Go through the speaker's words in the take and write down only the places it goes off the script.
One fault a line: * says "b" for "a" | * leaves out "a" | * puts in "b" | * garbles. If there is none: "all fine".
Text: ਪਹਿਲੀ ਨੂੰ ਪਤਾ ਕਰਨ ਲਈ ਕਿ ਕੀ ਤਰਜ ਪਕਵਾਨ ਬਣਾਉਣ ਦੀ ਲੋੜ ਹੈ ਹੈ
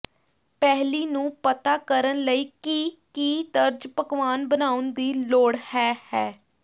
all fine